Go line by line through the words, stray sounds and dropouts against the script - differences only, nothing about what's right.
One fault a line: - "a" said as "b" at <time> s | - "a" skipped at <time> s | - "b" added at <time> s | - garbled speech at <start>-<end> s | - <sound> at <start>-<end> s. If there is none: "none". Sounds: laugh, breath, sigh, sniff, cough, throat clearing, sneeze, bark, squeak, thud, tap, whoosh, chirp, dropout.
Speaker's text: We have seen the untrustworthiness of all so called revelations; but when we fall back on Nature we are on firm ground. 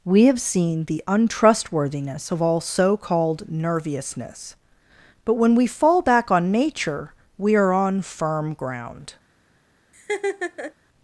- "revelations" said as "nerviousness" at 3.5 s
- laugh at 9.9-10.7 s